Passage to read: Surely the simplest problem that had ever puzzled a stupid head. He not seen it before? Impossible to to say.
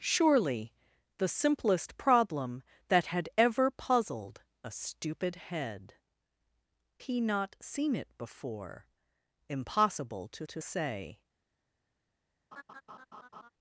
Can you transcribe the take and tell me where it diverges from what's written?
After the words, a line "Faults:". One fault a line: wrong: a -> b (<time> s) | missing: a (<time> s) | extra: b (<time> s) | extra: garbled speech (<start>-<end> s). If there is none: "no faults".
Surely the simplest problem that had ever puzzled a stupid head. He not seen it before? Impossible to to say.
Faults:
no faults